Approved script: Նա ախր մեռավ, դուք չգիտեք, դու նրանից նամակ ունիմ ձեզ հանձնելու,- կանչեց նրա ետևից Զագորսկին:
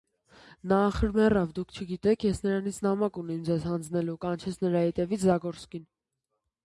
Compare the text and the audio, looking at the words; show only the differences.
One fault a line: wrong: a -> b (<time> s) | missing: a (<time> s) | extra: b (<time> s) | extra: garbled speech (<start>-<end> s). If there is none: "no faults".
wrong: դու -> ես (2.3 s)